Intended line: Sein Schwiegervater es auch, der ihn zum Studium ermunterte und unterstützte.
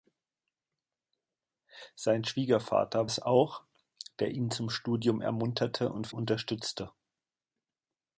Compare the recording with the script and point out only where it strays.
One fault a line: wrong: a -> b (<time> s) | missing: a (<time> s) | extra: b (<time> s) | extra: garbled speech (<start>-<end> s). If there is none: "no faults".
no faults